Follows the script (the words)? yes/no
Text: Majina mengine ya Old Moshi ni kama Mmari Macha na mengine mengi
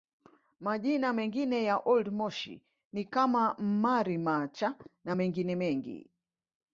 yes